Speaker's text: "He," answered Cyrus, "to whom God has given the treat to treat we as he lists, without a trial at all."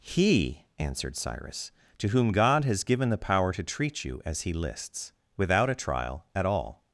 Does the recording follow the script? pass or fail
fail